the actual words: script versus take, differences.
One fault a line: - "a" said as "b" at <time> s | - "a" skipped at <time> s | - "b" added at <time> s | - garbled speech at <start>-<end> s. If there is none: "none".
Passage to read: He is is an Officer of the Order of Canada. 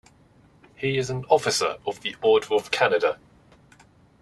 - "is" skipped at 1.1 s